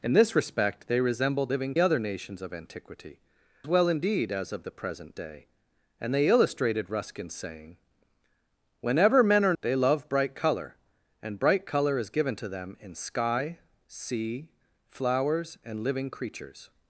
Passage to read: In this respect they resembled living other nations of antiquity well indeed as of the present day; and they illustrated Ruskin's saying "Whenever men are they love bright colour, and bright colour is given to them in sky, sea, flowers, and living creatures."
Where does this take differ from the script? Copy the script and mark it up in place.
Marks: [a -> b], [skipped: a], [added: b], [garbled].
In this respect they resembled living other nations of antiquity well indeed as of the present day; and they illustrated Ruskin's saying "Whenever men are they love bright colour, and bright colour is given to them in sky, sea, flowers, and living creatures."